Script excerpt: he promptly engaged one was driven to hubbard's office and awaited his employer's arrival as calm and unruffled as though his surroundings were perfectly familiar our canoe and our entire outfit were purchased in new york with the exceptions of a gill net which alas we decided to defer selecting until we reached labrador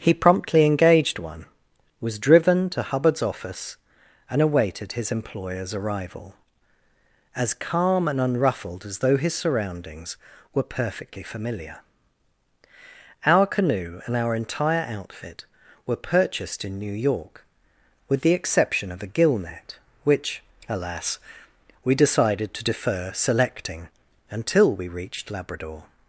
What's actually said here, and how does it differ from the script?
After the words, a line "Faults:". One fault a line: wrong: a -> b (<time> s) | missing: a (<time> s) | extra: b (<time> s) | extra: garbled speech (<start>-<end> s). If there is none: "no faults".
he promptly engaged one was driven to hubbard's office and awaited his employer's arrival as calm and unruffled as though his surroundings were perfectly familiar our canoe and our entire outfit were purchased in new york with the exception of a gill net which alas we decided to defer selecting until we reached labrador
Faults:
wrong: exceptions -> exception (18.3 s)